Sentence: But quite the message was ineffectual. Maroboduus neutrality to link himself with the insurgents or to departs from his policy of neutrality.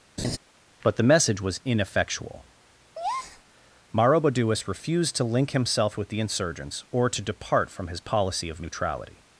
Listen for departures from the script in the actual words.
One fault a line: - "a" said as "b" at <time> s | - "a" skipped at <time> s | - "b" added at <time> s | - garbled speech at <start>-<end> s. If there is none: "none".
- "quite" skipped at 0.9 s
- "neutrality" said as "refused" at 4.7 s
- "departs" said as "depart" at 7.2 s